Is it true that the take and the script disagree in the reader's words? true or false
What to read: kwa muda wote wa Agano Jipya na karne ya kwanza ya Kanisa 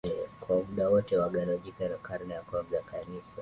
false